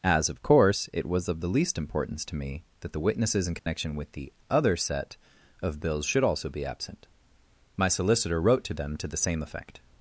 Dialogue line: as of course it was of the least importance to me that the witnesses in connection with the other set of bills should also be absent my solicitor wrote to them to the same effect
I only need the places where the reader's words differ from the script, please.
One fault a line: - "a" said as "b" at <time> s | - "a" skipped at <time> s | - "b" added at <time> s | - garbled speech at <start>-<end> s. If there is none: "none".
none